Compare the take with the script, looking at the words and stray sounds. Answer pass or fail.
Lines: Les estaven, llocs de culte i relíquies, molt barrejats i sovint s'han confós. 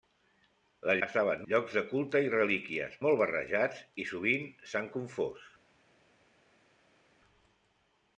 pass